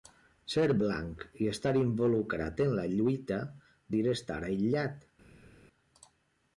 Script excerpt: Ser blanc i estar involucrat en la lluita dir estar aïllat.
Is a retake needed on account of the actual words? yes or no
no